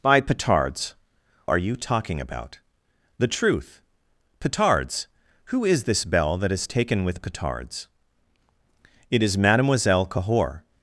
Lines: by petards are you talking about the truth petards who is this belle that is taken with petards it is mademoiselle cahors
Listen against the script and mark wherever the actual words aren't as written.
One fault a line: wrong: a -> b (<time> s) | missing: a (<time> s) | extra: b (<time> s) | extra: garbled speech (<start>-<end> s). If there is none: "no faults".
no faults